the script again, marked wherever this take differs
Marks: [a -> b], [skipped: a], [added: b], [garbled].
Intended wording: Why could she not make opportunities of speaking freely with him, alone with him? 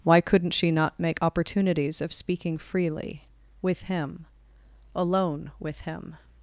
Why [could -> couldn't] she not make opportunities of speaking freely with him, alone with him?